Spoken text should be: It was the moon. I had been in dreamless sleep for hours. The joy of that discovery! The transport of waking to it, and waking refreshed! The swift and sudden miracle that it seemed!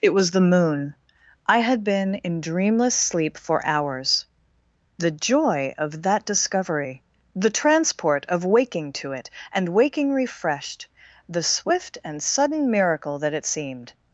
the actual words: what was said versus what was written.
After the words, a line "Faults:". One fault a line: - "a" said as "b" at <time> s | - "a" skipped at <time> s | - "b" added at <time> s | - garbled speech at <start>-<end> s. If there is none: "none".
It was the moon. I had been in dreamless sleep for hours. The joy of that discovery! The transport of waking to it, and waking refreshed! The swift and sudden miracle that it seemed!
Faults:
none